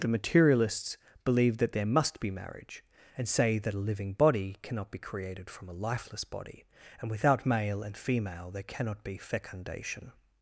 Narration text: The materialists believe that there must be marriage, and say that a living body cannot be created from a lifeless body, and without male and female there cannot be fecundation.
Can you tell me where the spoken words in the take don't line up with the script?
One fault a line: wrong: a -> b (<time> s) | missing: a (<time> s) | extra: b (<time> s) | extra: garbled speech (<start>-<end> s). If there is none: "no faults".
no faults